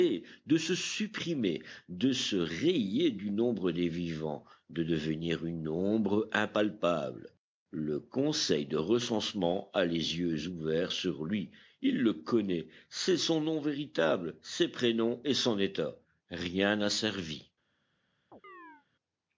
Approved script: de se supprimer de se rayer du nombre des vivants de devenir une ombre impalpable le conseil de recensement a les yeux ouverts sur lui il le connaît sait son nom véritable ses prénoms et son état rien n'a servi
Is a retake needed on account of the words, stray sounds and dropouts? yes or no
yes